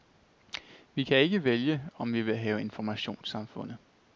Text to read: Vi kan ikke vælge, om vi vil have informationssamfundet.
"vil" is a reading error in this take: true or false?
false